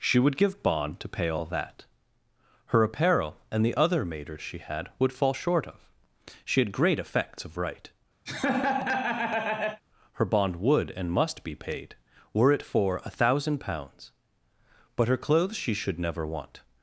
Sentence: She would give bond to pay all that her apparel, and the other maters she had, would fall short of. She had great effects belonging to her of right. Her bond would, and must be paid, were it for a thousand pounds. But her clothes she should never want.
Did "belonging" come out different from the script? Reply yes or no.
yes